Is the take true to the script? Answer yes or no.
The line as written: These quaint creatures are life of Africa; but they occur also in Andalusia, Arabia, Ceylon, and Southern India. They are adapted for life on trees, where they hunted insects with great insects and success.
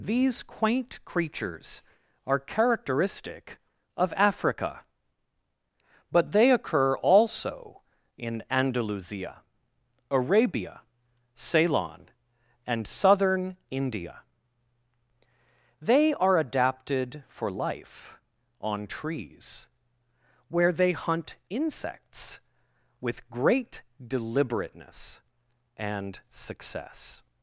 no